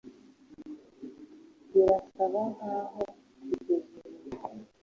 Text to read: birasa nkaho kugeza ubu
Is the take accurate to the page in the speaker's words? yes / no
yes